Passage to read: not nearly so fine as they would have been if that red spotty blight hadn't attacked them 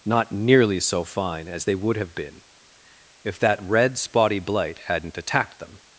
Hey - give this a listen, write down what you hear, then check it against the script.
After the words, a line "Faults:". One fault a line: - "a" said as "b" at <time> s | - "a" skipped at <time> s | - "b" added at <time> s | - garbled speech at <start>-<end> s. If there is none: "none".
not nearly so fine as they would have been if that red spotty blight hadn't attacked them
Faults:
none